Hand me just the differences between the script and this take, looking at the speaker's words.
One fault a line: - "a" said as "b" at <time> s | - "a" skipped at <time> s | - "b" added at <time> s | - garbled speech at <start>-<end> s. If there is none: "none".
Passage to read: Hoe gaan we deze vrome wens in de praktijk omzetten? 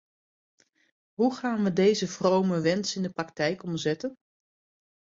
none